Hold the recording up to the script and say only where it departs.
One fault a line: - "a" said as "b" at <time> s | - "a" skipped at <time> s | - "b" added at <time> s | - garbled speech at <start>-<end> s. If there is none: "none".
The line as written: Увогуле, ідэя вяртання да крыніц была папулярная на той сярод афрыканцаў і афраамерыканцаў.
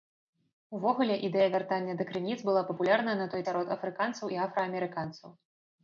none